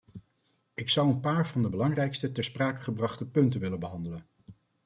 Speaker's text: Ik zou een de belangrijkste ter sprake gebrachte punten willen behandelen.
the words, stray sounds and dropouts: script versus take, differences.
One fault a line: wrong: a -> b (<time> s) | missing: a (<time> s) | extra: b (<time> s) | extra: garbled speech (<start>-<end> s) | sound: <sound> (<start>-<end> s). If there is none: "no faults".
extra: paar van (1.2 s)